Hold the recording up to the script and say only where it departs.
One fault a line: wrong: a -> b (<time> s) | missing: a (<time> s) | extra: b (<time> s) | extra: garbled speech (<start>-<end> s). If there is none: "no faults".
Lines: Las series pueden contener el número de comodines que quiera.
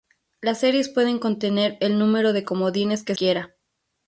no faults